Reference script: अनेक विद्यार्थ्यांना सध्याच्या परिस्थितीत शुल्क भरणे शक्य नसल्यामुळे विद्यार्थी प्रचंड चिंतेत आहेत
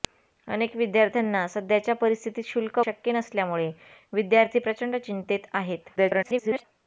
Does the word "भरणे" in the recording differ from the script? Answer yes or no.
yes